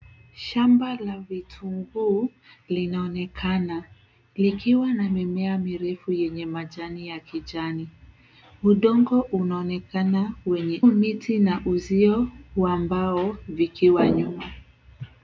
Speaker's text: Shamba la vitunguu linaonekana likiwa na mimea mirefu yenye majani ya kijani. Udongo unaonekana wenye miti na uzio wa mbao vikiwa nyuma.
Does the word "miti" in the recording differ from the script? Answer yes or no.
no